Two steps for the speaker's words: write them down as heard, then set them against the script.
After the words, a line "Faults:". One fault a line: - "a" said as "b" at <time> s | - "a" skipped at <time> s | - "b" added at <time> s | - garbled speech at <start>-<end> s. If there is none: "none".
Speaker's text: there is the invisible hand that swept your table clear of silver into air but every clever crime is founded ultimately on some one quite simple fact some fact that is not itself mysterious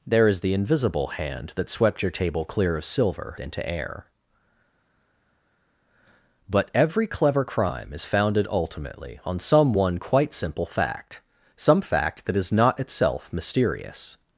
there is the invisible hand that swept your table clear of silver into air but every clever crime is founded ultimately on some one quite simple fact some fact that is not itself mysterious
Faults:
none